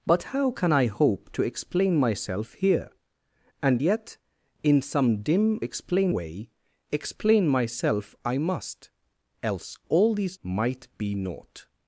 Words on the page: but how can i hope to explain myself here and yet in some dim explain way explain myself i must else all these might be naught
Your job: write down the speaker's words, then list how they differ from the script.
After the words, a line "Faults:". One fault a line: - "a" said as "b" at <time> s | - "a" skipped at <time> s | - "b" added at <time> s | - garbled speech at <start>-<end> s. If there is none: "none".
but how can i hope to explain myself here and yet in some dim explain way explain myself i must else all these might be naught
Faults:
none